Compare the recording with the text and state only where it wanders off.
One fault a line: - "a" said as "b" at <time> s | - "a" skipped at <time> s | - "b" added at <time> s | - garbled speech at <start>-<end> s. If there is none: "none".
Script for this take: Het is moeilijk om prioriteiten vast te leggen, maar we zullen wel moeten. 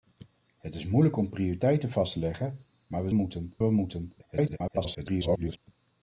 - "zullen" said as "moeten" at 3.1 s
- garbled speech at 4.2-5.6 s